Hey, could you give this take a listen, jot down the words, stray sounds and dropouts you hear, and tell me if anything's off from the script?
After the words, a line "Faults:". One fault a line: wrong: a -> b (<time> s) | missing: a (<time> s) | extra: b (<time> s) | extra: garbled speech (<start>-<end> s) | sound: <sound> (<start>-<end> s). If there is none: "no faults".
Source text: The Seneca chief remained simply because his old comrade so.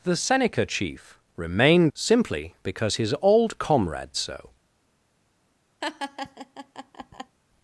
The Seneca chief remained simply because his old comrade so.
Faults:
sound: laugh (5.8-7.4 s)